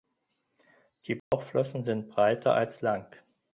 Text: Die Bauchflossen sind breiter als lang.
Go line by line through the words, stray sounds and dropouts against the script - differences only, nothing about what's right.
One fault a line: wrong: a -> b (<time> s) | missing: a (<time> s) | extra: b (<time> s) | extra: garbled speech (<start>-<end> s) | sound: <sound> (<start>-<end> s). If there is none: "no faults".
sound: dropout (1.2-1.3 s)